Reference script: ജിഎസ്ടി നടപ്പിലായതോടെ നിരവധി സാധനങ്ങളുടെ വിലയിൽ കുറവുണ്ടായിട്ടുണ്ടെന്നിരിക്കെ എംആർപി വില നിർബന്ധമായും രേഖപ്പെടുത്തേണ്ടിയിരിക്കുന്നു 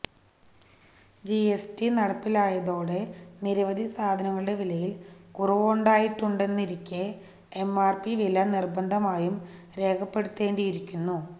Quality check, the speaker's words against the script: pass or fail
pass